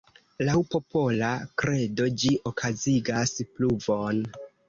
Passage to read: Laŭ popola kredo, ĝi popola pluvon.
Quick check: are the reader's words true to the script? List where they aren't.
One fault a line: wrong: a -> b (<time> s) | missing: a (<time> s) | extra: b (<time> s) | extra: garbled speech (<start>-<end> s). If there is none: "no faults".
wrong: popola -> okazigas (2.5 s)